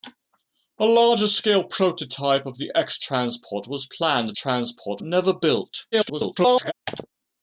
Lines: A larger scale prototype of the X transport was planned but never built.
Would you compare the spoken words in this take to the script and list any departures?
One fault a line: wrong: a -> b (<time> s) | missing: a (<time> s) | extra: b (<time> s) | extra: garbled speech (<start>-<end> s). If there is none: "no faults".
wrong: but -> transport (4.3 s)
extra: garbled speech (5.9-6.7 s)